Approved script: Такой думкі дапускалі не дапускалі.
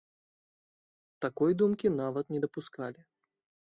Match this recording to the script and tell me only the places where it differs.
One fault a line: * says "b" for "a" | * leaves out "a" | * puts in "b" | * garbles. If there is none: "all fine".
* says "нават" for "дапускалі"